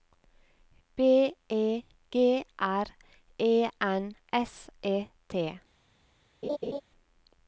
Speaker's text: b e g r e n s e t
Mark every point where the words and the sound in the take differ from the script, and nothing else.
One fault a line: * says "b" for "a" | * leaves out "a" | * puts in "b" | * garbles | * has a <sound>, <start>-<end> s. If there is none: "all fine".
* has a laugh, 6.4-6.8 s